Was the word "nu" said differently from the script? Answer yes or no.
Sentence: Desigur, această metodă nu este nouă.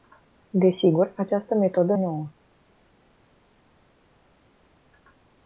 yes